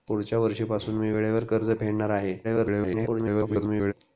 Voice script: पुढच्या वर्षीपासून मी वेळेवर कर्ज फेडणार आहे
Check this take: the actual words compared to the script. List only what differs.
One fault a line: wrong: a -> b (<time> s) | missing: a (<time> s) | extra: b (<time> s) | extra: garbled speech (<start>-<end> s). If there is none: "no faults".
extra: garbled speech (2.4-3.9 s)